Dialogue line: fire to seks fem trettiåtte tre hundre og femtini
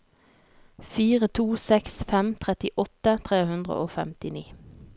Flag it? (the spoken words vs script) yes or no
no